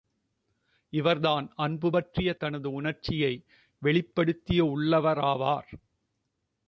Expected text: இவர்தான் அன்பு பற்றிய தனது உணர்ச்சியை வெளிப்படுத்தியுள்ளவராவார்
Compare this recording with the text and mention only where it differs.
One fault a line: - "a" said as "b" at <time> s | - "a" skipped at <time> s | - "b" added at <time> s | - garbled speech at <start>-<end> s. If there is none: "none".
none